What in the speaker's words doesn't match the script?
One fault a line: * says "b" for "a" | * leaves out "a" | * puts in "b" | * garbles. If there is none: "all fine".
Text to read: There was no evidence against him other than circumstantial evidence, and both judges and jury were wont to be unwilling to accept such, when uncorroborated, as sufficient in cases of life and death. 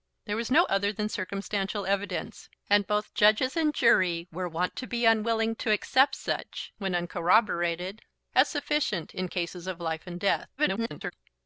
* leaves out "evidence against him"
* garbles